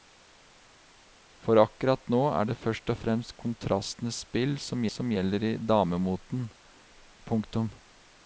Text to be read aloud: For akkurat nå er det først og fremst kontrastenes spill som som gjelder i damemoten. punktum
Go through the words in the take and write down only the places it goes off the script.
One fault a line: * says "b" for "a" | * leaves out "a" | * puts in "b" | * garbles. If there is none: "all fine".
all fine